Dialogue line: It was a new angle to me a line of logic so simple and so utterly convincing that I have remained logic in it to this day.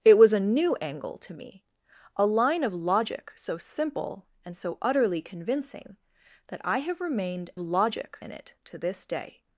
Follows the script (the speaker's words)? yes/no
yes